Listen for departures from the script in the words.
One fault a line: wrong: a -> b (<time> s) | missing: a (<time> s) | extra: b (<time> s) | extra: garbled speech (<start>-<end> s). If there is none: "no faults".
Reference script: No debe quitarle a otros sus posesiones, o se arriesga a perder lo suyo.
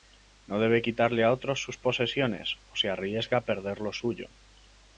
no faults